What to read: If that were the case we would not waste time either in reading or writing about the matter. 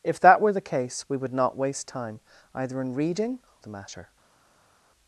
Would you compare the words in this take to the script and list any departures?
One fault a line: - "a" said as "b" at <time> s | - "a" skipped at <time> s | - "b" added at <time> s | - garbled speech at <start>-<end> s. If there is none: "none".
- "or writing about" skipped at 3.4 s